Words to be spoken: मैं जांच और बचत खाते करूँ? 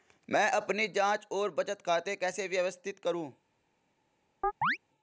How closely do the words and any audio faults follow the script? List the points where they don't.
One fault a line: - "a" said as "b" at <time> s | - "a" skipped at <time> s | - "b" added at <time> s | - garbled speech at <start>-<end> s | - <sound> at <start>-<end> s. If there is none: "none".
- "अपनी" added at 0.5 s
- "कैसे व्यवस्थित" added at 2.2 s
- chirp at 4.4-4.8 s